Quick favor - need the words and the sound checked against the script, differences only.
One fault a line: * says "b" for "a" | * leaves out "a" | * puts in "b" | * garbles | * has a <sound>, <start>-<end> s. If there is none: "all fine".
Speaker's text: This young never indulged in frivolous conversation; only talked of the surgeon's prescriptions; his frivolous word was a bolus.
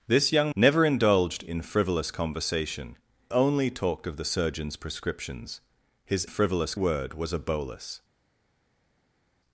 all fine